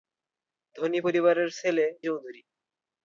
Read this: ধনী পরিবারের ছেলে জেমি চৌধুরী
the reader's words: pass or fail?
fail